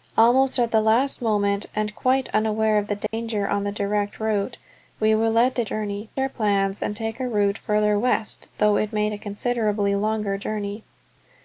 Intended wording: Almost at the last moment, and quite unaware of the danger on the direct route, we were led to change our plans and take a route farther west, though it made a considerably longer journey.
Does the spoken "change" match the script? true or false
false